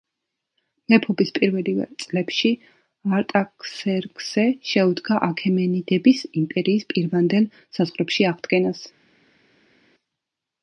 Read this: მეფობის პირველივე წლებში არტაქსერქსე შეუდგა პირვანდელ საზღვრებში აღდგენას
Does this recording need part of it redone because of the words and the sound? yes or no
yes